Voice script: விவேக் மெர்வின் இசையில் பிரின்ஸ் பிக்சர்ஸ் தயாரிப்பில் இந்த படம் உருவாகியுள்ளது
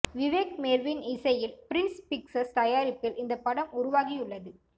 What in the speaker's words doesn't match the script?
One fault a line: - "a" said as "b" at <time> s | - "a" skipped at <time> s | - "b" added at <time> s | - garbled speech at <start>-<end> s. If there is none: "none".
none